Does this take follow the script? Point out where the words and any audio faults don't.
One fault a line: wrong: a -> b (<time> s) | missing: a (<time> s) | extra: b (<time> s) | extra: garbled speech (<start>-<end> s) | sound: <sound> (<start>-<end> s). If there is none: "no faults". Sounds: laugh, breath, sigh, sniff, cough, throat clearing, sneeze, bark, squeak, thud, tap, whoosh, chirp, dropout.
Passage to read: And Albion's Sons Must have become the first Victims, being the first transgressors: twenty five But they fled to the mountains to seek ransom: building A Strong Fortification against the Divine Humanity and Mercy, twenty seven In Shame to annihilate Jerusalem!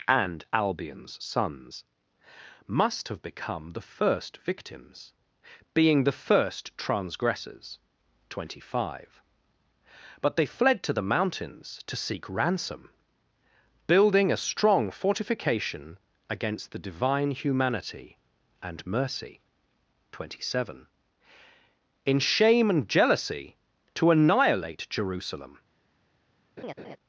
extra: and Jealousy (22.7 s)
sound: laugh (26.6-27.0 s)